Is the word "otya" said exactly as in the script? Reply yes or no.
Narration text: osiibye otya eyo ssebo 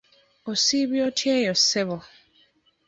yes